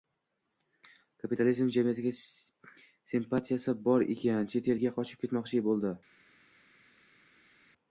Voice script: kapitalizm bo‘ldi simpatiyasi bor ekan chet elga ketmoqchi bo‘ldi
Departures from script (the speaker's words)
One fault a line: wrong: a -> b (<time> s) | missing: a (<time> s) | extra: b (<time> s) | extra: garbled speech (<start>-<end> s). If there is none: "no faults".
wrong: bo‘ldi -> jamiyatiga (1.8 s)
extra: qochib (5.0 s)